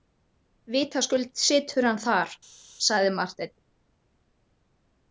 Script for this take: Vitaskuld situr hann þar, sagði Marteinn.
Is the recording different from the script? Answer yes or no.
no